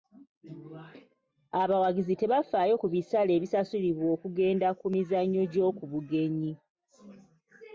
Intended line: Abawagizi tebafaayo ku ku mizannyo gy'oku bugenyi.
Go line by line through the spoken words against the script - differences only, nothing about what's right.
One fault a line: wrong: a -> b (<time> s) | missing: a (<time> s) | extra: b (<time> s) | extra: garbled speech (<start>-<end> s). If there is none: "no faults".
extra: bisale ebisasulibwa okugenda (2.9 s)